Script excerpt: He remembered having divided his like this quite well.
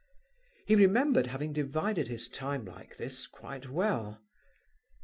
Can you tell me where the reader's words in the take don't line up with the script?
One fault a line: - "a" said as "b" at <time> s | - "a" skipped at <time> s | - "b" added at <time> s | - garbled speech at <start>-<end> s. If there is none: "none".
- "time" added at 2.3 s